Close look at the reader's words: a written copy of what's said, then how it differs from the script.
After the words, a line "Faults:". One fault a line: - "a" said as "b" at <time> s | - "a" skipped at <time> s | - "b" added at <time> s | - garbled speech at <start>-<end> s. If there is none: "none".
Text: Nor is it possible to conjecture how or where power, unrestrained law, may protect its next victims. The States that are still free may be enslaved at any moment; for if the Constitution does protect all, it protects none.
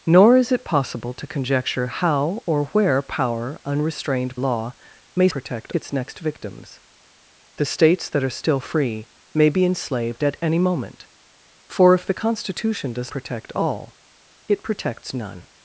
Nor is it possible to conjecture how or where power, unrestrained law, may protect its next victims. The States that are still free may be enslaved at any moment; for if the Constitution does protect all, it protects none.
Faults:
none